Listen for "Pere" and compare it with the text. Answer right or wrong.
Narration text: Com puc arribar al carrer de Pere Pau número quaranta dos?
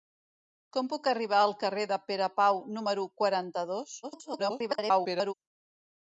right